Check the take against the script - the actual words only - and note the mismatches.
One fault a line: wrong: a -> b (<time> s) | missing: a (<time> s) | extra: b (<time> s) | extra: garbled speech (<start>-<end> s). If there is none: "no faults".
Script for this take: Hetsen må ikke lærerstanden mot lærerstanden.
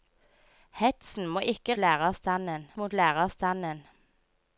no faults